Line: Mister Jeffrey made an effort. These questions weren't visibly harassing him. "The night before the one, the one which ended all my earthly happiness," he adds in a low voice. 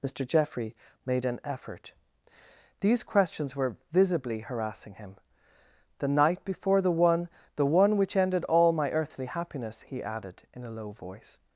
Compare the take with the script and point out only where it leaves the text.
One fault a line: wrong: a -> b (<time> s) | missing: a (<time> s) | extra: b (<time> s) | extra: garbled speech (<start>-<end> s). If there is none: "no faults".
wrong: weren't -> were (3.5 s)
wrong: adds -> added (10.0 s)